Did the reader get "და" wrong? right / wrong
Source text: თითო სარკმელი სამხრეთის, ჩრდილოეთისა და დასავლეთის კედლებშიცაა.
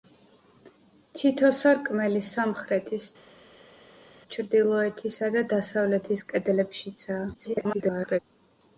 right